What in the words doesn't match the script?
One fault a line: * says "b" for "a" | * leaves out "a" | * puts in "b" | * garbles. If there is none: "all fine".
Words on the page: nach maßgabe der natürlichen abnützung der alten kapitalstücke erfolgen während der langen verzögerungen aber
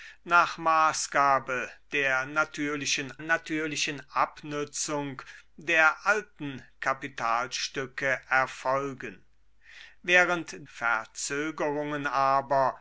* puts in "natürlichen"
* leaves out "der langen"